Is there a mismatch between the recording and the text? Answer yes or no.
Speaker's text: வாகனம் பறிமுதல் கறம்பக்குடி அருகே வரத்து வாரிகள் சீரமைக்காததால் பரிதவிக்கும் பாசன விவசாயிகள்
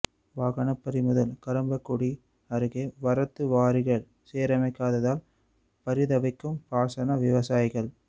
no